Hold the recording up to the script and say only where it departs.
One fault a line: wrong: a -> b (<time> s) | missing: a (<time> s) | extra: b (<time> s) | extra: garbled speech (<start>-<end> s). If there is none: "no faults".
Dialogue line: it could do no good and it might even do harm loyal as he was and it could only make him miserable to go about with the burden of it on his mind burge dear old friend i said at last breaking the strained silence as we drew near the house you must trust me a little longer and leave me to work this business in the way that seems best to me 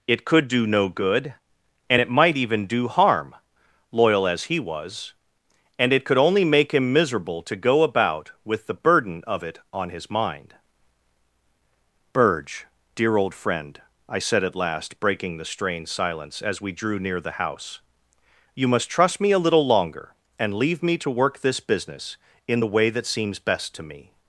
no faults